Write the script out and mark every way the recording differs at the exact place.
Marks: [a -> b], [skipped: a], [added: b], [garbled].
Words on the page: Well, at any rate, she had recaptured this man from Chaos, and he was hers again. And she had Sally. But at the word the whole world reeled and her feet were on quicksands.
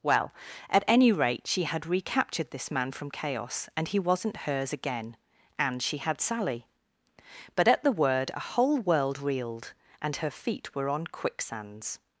Well, at any rate, she had recaptured this man from Chaos, and he [was -> wasn't] hers again. And she had Sally. But at the word [the -> a] whole world reeled and her feet were on quicksands.